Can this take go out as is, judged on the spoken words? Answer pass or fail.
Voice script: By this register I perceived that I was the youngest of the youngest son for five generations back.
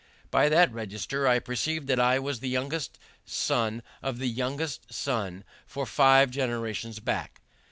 fail